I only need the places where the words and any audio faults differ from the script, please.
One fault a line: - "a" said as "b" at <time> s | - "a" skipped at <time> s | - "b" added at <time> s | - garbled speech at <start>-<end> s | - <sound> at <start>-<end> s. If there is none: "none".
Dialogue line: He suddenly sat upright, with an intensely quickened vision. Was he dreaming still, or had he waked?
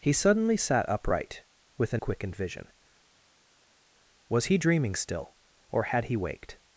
- "intensely" skipped at 2.0 s